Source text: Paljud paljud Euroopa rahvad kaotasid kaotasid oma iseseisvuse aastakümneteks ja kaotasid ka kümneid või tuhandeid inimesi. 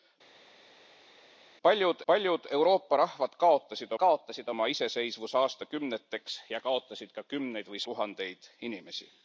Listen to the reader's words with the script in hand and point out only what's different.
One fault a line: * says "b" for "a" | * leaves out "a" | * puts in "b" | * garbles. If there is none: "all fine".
all fine